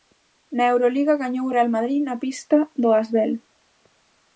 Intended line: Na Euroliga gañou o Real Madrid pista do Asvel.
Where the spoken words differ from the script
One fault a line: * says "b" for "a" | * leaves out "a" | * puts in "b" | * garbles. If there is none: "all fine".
* puts in "na"